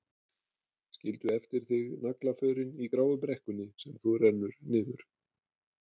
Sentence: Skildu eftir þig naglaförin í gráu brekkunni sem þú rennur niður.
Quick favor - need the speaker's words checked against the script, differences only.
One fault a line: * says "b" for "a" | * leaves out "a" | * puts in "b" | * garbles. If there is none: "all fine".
all fine